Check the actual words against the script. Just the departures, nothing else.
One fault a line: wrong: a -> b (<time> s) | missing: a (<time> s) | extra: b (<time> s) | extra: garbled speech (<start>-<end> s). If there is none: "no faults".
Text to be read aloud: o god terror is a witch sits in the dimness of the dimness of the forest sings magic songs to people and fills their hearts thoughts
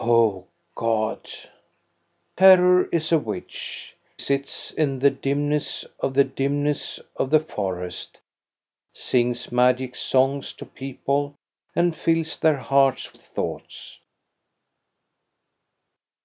no faults